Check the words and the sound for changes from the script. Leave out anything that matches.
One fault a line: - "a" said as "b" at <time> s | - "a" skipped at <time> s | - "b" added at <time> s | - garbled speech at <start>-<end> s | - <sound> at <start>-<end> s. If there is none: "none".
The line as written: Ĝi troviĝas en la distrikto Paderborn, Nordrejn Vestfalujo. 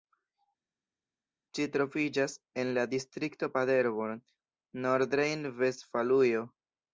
none